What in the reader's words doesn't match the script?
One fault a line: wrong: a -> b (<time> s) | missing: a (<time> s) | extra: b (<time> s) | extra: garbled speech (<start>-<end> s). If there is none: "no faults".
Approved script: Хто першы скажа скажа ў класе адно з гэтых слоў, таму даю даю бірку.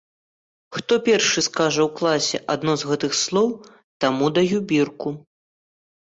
missing: скажа (1.8 s)
missing: даю (4.6 s)